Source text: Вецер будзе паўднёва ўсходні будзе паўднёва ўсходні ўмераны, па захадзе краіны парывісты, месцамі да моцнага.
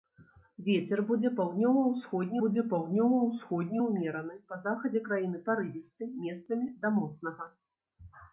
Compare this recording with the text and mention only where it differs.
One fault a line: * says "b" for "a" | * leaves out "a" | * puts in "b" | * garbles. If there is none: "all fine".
all fine